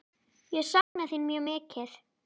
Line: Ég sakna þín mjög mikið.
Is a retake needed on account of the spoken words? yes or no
no